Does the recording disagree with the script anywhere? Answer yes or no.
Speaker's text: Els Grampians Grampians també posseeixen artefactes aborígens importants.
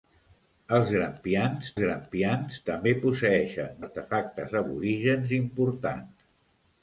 no